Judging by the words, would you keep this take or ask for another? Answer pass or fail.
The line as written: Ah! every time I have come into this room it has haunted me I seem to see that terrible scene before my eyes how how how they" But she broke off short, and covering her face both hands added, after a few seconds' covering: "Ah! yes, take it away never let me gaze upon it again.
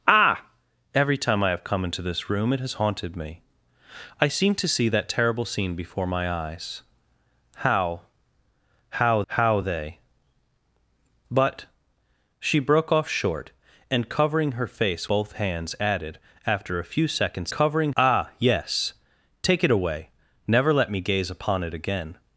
pass